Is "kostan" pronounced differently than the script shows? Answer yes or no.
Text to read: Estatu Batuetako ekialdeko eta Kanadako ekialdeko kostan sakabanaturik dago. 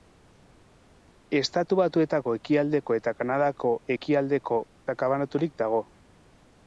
yes